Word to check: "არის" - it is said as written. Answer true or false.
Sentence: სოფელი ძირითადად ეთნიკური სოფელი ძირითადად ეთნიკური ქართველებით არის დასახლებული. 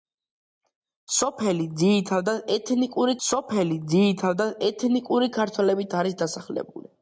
true